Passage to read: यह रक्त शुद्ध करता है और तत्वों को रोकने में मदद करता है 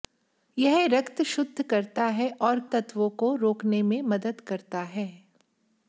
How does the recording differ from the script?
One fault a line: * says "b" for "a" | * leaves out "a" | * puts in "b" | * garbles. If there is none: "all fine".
all fine